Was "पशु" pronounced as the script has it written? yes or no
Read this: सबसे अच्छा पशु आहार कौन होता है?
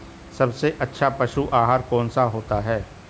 yes